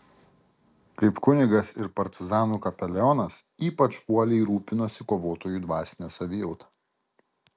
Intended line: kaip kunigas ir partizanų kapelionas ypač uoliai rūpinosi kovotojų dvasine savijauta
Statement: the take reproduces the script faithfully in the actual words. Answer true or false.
true